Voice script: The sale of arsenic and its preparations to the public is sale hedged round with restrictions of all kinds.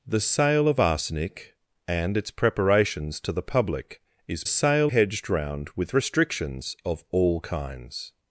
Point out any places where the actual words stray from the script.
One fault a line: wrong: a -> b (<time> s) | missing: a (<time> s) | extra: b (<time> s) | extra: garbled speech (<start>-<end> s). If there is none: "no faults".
no faults